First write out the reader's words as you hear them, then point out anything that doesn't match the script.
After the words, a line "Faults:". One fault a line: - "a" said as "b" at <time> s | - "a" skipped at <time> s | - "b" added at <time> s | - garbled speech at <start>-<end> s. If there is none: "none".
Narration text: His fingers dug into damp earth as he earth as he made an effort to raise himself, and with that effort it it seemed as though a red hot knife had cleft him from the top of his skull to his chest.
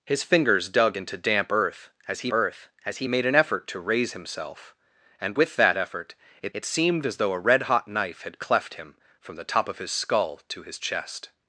His fingers dug into damp earth as he earth as he made an effort to raise himself, and with that effort it it seemed as though a red hot knife had cleft him from the top of his skull to his chest.
Faults:
none